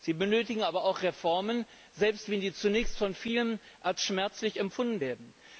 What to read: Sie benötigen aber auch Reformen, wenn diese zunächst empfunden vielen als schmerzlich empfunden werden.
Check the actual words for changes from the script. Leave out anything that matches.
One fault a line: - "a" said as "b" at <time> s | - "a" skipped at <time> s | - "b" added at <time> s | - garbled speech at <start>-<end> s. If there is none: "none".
- "selbst" added at 1.9 s
- "empfunden" said as "von" at 3.0 s